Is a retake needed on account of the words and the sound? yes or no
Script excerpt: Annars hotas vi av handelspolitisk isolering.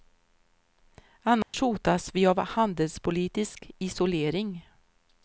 yes